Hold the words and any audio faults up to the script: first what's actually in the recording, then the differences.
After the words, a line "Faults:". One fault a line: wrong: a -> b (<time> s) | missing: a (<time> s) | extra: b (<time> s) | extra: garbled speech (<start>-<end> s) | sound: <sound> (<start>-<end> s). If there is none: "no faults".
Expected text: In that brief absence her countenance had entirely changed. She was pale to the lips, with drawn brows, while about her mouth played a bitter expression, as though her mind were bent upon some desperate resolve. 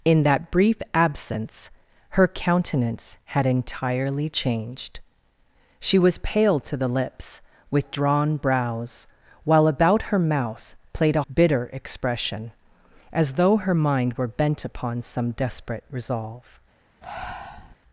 In that brief absence her countenance had entirely changed. She was pale to the lips, with drawn brows, while about her mouth played a bitter expression, as though her mind were bent upon some desperate resolve.
Faults:
sound: breath (17.0-17.8 s)